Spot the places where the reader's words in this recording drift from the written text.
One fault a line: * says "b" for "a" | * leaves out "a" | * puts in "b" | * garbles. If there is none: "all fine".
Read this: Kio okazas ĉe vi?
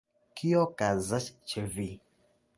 all fine